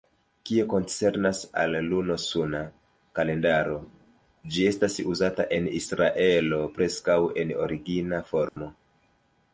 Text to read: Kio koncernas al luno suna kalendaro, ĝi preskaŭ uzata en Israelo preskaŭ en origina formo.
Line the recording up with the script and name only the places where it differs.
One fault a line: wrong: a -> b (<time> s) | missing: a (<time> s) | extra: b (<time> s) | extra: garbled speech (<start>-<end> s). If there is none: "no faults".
wrong: preskaŭ -> estas (4.7 s)